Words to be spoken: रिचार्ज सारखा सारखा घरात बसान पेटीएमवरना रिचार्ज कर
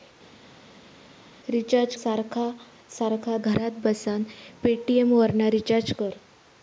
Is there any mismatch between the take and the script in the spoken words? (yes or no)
no